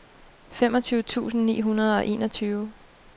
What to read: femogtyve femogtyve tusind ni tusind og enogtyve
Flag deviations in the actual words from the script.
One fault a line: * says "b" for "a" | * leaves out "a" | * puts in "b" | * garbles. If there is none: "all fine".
* leaves out "femogtyve"
* says "hundrede" for "tusind"